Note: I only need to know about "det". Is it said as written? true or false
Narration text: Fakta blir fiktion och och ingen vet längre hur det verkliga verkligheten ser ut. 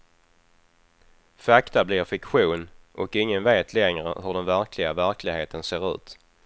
false